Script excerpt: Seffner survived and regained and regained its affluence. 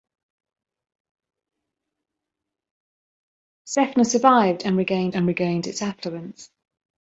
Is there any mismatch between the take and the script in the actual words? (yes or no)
no